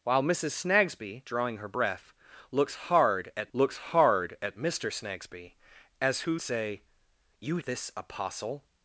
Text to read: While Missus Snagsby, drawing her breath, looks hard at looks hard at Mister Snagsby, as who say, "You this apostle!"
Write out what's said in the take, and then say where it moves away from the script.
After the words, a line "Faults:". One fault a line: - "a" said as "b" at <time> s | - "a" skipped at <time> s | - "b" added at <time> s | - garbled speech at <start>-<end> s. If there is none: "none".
While Missus Snagsby, drawing her breath, looks hard at looks hard at Mister Snagsby, as who say, "You this apostle!"
Faults:
none